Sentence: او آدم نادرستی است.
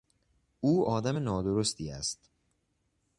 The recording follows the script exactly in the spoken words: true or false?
true